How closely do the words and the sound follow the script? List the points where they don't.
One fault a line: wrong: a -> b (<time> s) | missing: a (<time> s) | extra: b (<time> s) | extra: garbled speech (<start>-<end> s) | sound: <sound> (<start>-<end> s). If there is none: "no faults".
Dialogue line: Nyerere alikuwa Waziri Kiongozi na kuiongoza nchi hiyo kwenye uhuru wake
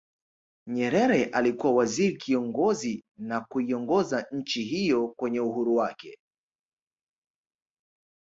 no faults